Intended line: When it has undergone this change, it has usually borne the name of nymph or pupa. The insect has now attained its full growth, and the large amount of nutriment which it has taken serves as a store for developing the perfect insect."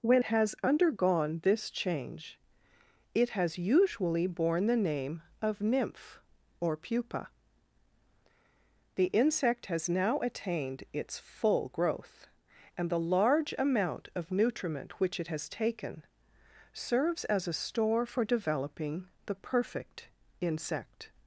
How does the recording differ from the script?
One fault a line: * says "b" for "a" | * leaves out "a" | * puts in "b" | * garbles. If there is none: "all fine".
* leaves out "it"